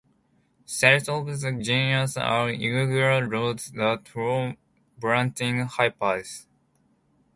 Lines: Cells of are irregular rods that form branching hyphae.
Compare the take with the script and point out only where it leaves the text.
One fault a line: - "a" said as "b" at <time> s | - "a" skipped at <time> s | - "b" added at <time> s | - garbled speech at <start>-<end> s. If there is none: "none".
- "the genus" added at 1.3 s